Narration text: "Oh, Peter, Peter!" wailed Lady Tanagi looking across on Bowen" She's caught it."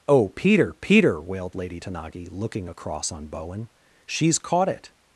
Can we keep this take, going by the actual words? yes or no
yes